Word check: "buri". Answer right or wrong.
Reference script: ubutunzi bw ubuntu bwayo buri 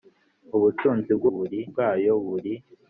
right